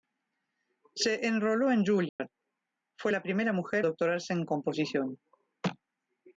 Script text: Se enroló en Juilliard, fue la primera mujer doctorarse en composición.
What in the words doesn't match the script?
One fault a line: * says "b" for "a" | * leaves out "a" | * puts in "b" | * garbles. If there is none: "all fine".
all fine